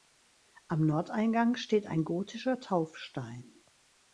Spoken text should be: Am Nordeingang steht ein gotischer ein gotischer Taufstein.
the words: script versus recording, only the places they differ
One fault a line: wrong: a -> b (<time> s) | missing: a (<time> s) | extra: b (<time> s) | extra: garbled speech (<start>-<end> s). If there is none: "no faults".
missing: ein gotischer (2.6 s)